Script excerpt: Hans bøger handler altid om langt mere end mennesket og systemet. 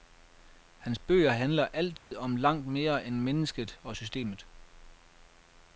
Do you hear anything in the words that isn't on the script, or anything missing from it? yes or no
no